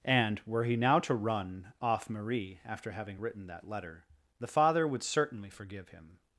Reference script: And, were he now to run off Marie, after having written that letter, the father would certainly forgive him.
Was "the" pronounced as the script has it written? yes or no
yes